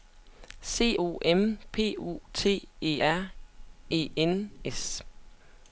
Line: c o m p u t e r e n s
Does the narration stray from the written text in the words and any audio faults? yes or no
no